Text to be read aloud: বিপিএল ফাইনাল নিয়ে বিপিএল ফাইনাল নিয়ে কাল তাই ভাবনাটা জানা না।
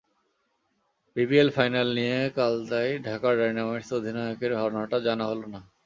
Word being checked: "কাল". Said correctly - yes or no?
no